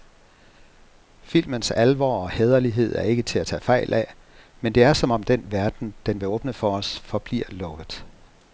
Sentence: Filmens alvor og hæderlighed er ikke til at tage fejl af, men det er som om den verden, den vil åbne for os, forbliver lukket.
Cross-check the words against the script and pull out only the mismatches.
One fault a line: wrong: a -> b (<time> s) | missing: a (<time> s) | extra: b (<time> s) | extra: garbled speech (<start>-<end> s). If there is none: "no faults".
no faults